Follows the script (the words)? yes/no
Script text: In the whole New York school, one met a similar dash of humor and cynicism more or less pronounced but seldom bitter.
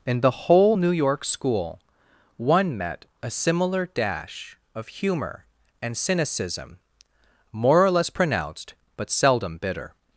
yes